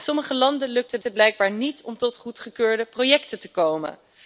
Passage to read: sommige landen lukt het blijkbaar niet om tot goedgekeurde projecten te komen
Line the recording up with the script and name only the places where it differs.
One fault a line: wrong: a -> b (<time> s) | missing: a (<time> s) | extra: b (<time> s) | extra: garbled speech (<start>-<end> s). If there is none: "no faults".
extra: het (1.0 s)